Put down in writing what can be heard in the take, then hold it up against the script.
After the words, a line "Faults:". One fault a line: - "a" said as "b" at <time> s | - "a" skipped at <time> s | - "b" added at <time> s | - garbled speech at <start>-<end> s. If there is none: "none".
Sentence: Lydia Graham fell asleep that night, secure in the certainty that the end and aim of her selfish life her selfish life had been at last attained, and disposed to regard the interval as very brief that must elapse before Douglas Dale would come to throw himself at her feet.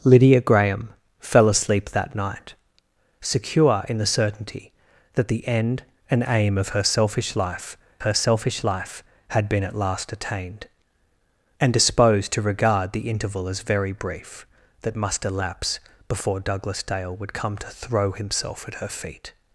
Lydia Graham fell asleep that night, secure in the certainty that the end and aim of her selfish life her selfish life had been at last attained, and disposed to regard the interval as very brief that must elapse before Douglas Dale would come to throw himself at her feet.
Faults:
none